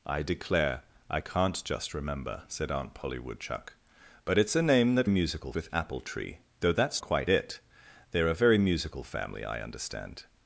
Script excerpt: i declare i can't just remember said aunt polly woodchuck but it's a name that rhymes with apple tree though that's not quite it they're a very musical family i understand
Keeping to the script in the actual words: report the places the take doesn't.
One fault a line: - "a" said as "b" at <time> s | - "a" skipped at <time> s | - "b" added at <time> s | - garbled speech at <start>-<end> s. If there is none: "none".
- "rhymes" said as "musical" at 5.1 s
- "not" skipped at 7.0 s